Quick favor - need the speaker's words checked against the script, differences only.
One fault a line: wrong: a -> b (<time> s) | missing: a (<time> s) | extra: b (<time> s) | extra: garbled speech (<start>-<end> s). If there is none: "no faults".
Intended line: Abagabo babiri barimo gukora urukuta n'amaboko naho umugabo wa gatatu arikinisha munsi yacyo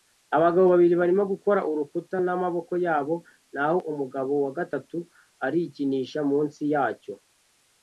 extra: yabo (2.8 s)